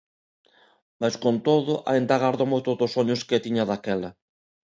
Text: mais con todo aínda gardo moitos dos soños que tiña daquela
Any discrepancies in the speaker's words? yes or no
no